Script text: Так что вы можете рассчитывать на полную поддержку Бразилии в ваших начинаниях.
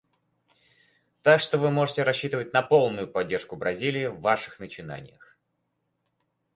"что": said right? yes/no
yes